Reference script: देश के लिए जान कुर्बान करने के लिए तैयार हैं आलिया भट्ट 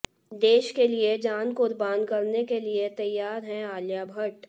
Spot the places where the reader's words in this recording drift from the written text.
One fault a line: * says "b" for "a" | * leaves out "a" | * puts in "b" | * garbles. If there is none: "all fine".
all fine